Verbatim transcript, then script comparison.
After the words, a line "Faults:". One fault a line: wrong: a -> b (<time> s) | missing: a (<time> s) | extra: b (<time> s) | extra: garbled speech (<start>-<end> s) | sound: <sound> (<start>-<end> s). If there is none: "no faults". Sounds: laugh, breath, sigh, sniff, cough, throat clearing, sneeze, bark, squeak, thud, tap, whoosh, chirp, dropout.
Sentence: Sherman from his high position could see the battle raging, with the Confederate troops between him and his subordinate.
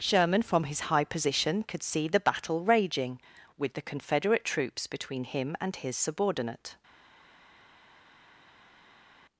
Sherman from his high position could see the battle raging, with the Confederate troops between him and his subordinate.
Faults:
no faults